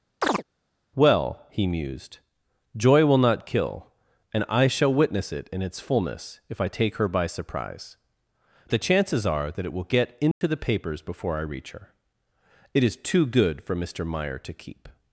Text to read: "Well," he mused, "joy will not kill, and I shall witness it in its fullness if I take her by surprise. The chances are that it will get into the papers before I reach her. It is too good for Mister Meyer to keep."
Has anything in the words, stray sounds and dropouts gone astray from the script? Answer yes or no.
yes